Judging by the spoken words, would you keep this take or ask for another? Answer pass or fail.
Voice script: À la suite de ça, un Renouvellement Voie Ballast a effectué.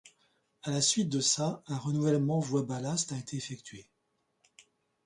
fail